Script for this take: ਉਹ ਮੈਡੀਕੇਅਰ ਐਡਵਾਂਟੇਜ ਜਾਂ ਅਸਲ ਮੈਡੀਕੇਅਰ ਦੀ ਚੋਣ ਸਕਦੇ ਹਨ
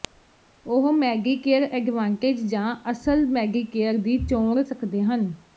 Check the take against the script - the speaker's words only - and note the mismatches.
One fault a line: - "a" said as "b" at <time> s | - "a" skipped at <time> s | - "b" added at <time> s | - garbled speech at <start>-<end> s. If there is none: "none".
none